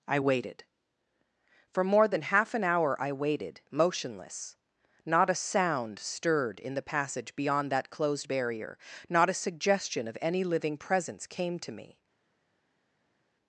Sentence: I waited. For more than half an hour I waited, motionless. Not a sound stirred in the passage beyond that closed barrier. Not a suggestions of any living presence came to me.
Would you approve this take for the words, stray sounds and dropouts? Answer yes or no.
no